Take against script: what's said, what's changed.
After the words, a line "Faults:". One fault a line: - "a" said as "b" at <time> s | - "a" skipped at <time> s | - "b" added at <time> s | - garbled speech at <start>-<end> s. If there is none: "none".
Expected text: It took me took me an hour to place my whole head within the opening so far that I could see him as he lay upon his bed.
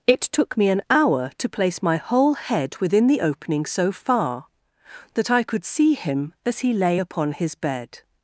It took me an hour to place my whole head within the opening so far that I could see him as he lay upon his bed.
Faults:
- "took me" skipped at 0.7 s